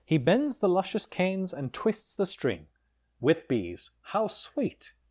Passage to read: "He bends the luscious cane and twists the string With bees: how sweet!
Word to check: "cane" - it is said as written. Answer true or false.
false